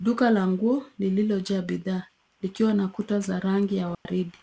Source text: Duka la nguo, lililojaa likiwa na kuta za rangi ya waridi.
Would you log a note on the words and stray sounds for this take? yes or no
yes